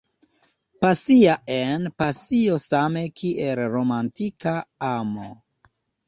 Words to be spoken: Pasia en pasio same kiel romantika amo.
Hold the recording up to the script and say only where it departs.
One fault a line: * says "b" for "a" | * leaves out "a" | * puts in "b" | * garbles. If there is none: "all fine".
all fine